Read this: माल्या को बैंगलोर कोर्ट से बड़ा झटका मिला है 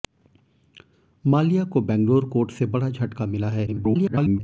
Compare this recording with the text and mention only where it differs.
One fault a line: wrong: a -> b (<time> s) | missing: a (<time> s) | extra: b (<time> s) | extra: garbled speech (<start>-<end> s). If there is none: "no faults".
extra: garbled speech (3.7-4.4 s)